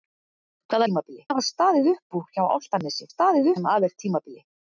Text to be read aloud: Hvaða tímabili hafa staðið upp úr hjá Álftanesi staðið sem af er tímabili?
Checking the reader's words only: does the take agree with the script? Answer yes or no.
yes